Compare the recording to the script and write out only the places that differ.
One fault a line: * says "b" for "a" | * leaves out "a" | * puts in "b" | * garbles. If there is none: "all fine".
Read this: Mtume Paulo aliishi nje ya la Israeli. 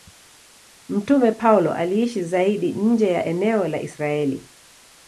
* puts in "zaidi"
* puts in "eneo"